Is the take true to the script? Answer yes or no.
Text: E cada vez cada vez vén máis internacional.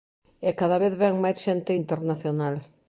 no